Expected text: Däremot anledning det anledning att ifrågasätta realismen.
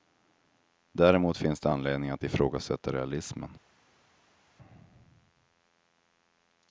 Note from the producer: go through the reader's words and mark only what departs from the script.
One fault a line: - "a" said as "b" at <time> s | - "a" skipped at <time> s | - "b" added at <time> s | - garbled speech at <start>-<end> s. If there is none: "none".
- "anledning" said as "finns" at 1.4 s